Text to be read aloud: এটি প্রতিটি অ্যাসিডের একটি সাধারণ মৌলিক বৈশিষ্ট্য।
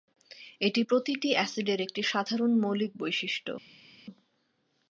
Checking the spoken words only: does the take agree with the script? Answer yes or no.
yes